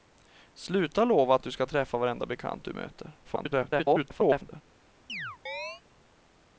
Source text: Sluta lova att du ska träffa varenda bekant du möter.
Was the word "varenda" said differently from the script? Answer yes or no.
no